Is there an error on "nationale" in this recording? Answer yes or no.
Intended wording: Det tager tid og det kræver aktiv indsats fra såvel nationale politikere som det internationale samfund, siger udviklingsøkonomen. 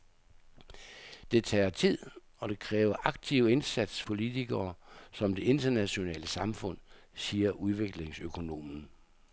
yes